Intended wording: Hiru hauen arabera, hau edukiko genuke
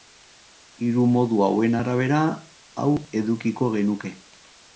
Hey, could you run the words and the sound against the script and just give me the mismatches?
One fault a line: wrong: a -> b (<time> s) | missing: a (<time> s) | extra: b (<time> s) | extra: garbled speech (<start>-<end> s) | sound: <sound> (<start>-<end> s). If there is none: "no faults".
extra: modu (1.1 s)